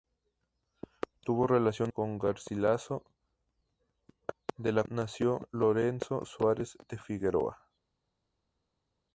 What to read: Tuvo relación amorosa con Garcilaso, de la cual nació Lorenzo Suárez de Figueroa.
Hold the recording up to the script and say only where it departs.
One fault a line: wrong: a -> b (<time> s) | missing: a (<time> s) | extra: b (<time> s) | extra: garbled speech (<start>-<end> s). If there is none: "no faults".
missing: amorosa (1.9 s)
missing: cual (4.8 s)